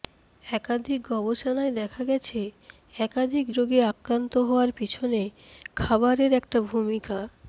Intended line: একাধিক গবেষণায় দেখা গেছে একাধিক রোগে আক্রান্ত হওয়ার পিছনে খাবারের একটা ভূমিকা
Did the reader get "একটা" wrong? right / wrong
right